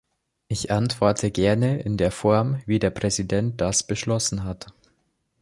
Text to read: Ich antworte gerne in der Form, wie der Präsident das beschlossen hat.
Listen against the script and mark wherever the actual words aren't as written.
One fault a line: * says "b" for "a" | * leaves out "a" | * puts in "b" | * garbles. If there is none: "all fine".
all fine